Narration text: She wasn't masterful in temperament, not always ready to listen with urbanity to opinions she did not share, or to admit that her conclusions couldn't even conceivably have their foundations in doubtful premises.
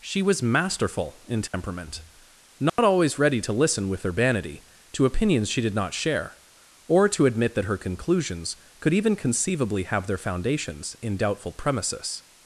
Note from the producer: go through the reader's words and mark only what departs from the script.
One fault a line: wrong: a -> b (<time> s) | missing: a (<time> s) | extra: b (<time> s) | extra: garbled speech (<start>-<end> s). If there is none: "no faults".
wrong: wasn't -> was (0.2 s)
wrong: couldn't -> could (8.8 s)